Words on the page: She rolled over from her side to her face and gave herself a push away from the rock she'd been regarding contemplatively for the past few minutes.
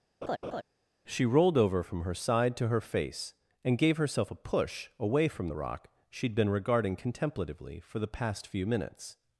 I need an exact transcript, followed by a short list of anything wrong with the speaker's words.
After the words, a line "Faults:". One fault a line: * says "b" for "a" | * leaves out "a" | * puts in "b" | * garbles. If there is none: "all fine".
She rolled over from her side to her face and gave herself a push away from the rock she'd been regarding contemplatively for the past few minutes.
Faults:
all fine